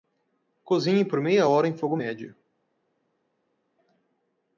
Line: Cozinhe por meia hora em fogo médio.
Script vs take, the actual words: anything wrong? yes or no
no